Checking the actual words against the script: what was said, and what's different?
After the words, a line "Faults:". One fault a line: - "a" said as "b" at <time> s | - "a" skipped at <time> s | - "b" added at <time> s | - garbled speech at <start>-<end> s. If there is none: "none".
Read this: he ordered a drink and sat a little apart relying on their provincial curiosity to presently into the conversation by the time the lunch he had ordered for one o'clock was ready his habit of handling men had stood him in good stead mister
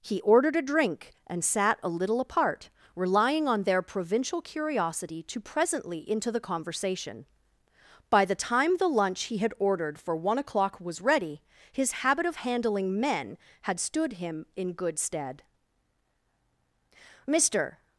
he ordered a drink and sat a little apart relying on their provincial curiosity to presently into the conversation by the time the lunch he had ordered for one o'clock was ready his habit of handling men had stood him in good stead mister
Faults:
none